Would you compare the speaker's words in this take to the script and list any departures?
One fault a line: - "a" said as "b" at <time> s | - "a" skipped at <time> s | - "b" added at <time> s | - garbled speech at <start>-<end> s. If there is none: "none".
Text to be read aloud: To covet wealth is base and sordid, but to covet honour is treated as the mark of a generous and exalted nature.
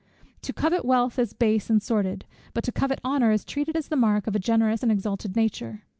none